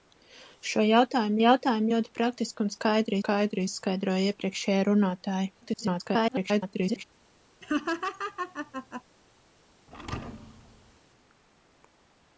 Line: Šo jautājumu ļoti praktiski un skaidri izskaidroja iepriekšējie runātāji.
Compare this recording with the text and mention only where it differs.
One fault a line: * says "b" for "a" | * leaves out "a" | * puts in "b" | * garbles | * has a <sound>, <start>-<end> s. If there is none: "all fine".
* puts in "jautājumu"
* puts in "skaidri"
* garbles
* has a laugh, 7.6-9.0 s
* has a thud, 9.9-11.0 s